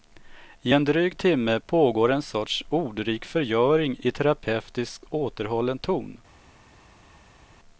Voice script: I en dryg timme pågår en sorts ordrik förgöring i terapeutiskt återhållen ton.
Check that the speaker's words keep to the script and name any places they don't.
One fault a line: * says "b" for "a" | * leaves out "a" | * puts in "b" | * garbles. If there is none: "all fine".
all fine